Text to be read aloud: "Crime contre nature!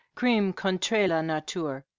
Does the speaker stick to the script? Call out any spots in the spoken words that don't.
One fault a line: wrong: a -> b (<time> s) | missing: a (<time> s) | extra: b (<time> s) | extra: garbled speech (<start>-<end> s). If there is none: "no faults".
extra: la (1.0 s)